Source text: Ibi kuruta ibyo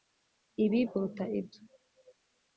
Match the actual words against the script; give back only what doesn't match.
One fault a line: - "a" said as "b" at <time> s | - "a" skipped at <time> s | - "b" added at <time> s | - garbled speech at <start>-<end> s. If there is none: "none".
none